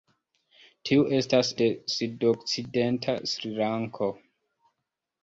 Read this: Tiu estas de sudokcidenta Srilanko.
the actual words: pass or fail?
pass